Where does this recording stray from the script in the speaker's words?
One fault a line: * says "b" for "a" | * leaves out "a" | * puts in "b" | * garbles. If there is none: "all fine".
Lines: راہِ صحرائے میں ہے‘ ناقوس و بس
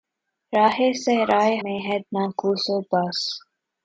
all fine